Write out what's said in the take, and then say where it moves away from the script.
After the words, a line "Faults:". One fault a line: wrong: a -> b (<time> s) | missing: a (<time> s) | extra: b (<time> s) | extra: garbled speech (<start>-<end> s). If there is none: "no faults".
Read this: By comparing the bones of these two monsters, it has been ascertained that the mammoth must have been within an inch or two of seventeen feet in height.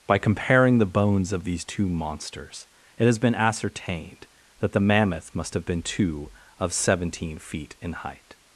By comparing the bones of these two monsters, it has been ascertained that the mammoth must have been two of seventeen feet in height.
Faults:
missing: within an inch or (5.8 s)